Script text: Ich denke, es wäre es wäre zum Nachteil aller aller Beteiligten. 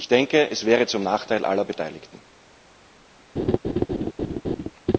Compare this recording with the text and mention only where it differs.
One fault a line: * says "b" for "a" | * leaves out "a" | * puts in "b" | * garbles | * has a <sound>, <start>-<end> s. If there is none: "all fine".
* leaves out "es wäre"
* leaves out "aller"
* has a laugh, 3.4-4.7 s